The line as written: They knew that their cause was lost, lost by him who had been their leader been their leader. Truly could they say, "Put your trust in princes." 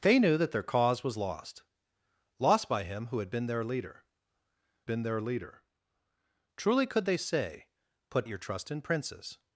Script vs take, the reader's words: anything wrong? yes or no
no